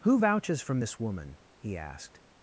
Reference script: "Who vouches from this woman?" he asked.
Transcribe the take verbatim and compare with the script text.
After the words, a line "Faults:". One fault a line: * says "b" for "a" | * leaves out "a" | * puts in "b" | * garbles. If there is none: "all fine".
"Who vouches from this woman?" he asked.
Faults:
all fine